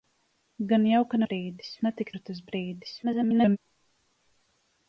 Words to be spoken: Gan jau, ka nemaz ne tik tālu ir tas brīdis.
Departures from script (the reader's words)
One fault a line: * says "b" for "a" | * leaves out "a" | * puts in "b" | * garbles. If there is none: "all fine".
* says "brīdis" for "nemaz"
* leaves out "tālu"
* garbles